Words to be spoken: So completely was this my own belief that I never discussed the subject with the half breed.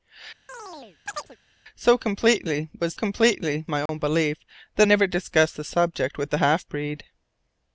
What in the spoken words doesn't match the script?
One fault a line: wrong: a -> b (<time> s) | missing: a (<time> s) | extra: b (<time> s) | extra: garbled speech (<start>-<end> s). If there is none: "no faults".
wrong: this -> completely (2.9 s)
missing: I (4.9 s)